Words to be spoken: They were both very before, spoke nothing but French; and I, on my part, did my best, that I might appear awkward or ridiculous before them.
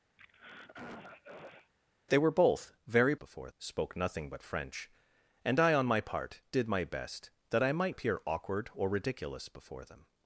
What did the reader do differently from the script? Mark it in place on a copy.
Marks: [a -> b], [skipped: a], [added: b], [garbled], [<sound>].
[throat clearing] They were both very before, spoke nothing but French; and I, on my part, did my best, that I might appear awkward or ridiculous before them.